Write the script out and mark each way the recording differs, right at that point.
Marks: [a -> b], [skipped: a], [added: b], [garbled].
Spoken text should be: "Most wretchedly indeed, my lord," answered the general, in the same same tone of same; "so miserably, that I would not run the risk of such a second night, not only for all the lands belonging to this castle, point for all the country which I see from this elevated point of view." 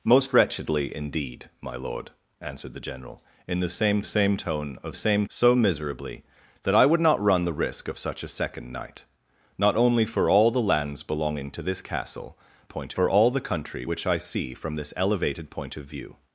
"Most wretchedly indeed, my lord," answered the general, in the same same tone of same; "so miserably, that I would not run the risk of such a second night, not only for all the lands belonging to this castle, point for all the country which I see from this elevated point of view."